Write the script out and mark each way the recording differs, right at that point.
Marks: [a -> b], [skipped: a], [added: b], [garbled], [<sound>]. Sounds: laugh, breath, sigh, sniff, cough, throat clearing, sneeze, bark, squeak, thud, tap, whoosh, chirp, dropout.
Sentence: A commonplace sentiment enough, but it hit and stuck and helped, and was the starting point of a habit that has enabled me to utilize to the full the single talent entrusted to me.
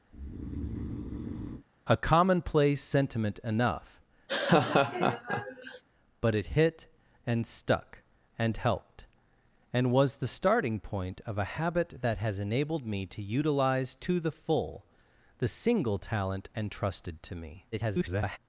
[breath] A commonplace sentiment enough, [laugh] but it hit and stuck and helped, and was the starting point of a habit that has enabled me to utilize to the full the single talent entrusted to me. [garbled]